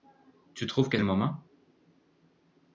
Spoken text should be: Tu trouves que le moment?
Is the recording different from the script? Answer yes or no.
no